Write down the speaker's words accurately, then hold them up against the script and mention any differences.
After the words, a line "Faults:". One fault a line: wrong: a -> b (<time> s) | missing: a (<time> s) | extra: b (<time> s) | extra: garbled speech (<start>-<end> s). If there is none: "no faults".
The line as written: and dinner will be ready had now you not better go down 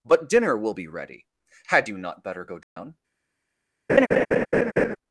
but dinner will be ready had you not better go down
Faults:
wrong: and -> but (0.0 s)
missing: now (1.9 s)